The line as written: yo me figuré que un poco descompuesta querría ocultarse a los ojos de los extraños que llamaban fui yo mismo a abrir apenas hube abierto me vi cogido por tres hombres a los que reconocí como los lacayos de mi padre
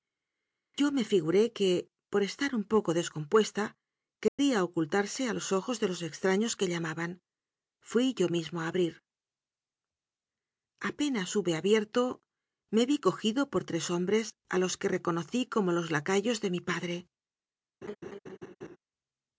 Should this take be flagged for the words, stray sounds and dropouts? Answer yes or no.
yes